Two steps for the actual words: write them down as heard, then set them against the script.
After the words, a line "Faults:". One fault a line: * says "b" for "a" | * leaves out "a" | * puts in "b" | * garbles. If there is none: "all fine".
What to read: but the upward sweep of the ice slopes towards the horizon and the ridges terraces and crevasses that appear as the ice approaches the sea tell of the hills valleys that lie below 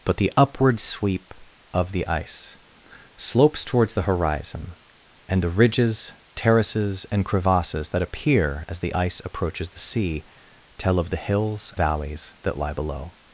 but the upward sweep of the ice slopes towards the horizon and the ridges terraces and crevasses that appear as the ice approaches the sea tell of the hills valleys that lie below
Faults:
all fine